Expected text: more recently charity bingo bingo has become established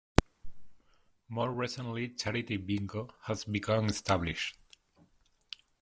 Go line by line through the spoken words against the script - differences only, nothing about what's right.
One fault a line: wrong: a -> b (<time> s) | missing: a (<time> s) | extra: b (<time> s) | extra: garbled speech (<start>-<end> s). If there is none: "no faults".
missing: bingo (3.1 s)